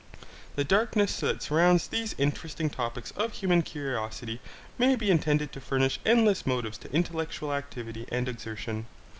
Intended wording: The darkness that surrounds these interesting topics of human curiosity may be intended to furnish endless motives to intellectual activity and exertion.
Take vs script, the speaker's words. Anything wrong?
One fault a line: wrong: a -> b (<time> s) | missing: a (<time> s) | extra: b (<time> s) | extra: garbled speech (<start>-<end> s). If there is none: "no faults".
no faults